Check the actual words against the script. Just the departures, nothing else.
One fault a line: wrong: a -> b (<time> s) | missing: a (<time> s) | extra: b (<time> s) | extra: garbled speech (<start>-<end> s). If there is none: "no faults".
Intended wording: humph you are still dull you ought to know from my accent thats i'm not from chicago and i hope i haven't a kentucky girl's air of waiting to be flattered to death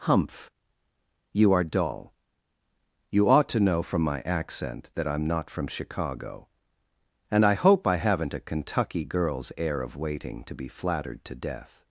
missing: still (1.6 s)
wrong: thats -> that (5.0 s)